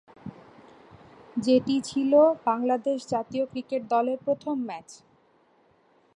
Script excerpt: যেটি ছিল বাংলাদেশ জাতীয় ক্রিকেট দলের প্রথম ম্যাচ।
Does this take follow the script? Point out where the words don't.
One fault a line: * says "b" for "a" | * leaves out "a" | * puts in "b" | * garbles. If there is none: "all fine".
all fine